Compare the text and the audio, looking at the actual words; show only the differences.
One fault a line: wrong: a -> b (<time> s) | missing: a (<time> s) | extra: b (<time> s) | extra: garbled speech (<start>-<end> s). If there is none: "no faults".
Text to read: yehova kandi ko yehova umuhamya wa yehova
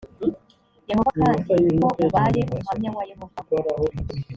wrong: yehova -> ubaye (2.0 s)